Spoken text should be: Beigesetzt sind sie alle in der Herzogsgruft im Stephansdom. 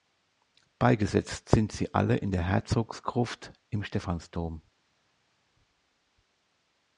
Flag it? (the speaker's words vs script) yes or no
no